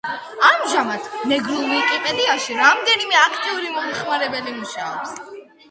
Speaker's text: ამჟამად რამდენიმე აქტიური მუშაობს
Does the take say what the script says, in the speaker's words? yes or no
no